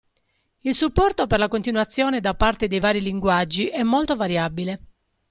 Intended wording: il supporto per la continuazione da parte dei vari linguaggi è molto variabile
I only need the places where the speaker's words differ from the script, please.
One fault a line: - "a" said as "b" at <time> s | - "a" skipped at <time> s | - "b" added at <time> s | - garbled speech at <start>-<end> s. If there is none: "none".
none